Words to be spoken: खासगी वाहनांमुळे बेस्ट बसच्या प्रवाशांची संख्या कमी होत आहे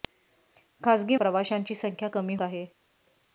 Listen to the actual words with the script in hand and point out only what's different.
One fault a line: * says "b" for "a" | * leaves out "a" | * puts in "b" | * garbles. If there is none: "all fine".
* leaves out "वाहनांमुळे बेस्ट बसच्या"
* leaves out "होत"